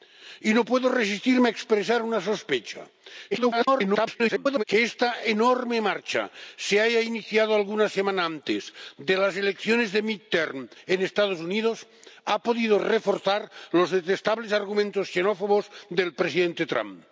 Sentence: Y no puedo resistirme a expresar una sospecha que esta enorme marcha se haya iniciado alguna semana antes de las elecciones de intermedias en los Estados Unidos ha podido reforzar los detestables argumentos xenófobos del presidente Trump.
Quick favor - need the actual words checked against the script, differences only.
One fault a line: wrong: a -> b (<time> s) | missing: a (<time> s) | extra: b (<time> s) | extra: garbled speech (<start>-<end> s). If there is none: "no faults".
extra: garbled speech (3.3-4.6 s)